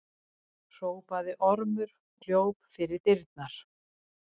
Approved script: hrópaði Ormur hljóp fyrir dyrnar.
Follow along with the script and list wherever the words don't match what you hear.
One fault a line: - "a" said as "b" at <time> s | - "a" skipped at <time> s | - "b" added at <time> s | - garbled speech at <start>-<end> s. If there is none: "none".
none